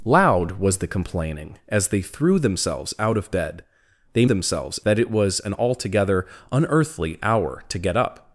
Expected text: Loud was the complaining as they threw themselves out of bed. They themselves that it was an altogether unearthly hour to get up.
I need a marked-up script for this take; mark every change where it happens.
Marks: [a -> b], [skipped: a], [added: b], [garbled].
Loud was the complaining as they threw themselves out of bed. They themselves that it was an altogether unearthly hour to get up.